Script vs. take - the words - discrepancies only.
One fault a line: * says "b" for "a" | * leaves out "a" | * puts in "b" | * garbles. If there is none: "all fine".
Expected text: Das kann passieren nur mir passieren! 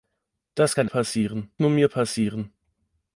all fine